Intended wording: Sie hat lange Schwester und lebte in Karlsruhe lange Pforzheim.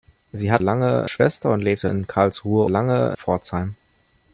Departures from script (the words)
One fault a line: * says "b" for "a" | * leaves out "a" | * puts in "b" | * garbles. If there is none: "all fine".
all fine